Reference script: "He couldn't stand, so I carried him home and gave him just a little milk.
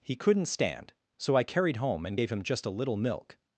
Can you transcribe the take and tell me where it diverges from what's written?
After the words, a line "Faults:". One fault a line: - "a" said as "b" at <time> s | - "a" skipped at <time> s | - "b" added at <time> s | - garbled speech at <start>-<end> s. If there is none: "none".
"He couldn't stand, so I carried home and gave him just a little milk.
Faults:
- "him" skipped at 1.8 s